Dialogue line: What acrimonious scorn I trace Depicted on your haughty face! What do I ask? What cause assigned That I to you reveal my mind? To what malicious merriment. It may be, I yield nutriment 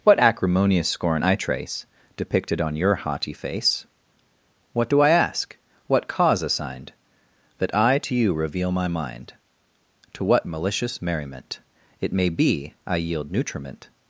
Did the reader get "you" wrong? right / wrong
right